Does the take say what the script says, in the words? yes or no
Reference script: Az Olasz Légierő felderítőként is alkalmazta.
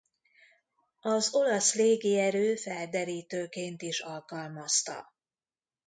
yes